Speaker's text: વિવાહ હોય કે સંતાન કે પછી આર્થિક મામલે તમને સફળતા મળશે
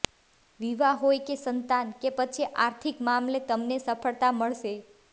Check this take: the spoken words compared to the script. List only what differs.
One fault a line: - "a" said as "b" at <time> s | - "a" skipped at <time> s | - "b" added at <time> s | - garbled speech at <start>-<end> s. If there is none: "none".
none